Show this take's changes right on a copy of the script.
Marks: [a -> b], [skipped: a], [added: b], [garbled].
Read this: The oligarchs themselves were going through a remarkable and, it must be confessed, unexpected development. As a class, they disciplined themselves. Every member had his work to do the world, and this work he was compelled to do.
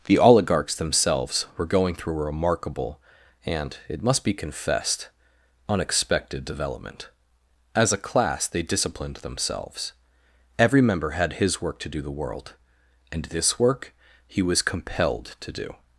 The oligarchs themselves were going through a remarkable and, it must be confessed, unexpected development. As a class, they disciplined themselves. Every member had his work to do the world, and this work he was compelled to do.